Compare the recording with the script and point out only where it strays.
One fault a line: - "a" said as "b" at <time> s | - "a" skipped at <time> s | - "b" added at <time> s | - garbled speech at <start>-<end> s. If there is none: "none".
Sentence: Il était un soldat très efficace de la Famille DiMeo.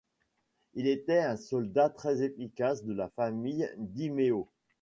none